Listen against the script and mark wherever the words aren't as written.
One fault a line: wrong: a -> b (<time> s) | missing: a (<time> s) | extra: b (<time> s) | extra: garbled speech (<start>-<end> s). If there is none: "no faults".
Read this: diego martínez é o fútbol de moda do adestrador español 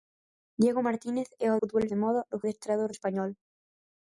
no faults